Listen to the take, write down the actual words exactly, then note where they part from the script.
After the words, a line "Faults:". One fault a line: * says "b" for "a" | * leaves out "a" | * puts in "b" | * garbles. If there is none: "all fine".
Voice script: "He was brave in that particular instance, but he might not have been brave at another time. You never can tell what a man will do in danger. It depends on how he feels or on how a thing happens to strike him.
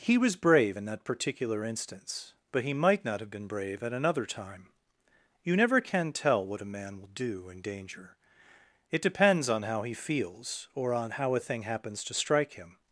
"He was brave in that particular instance, but he might not have been brave at another time. You never can tell what a man will do in danger. It depends on how he feels or on how a thing happens to strike him.
Faults:
all fine